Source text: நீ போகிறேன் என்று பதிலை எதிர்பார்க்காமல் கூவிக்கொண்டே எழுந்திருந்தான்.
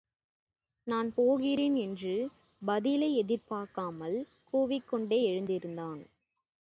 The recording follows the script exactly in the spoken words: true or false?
false